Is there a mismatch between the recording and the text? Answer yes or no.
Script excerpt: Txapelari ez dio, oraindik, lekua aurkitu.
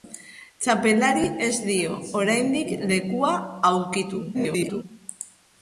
yes